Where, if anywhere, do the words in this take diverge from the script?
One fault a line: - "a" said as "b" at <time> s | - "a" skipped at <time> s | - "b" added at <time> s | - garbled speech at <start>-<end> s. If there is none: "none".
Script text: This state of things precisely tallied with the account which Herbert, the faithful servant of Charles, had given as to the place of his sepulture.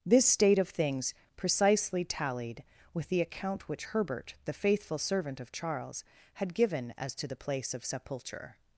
- "his" skipped at 7.8 s